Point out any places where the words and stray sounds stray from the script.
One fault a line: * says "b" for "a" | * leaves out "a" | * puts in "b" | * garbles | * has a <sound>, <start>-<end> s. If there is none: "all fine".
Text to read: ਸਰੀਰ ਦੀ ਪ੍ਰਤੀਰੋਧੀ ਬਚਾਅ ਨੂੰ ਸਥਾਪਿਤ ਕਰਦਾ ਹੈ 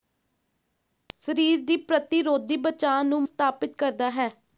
all fine